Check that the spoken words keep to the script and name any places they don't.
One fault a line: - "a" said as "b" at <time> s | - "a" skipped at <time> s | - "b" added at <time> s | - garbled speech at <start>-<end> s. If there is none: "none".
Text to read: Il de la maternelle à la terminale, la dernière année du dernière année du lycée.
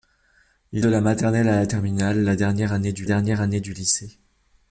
none